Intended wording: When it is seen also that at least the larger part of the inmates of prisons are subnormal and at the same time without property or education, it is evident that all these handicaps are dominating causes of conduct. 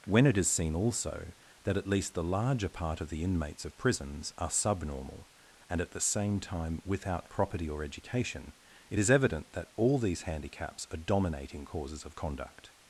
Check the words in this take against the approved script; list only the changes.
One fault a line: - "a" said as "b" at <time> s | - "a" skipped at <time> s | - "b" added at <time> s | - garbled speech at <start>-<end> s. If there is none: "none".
none